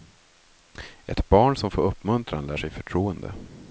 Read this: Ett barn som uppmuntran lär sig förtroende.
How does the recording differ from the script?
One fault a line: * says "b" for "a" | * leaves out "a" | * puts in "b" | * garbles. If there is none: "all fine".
* puts in "får"